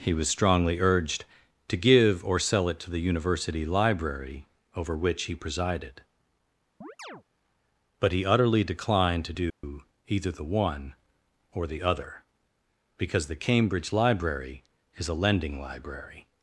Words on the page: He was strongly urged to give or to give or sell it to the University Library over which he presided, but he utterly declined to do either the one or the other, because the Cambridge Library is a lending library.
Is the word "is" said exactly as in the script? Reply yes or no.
yes